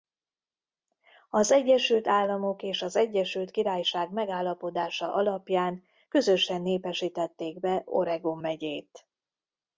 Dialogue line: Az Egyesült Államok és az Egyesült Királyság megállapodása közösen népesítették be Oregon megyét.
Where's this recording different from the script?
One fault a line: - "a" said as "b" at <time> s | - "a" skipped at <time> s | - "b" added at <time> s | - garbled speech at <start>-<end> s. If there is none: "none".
- "alapján" added at 5.1 s